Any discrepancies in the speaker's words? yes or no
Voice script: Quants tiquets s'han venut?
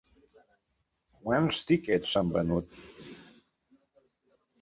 no